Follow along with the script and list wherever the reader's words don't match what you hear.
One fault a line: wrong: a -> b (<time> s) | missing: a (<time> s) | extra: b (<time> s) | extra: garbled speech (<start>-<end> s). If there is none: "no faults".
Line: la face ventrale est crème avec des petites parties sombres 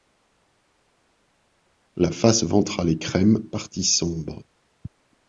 missing: avec des petites (3.4 s)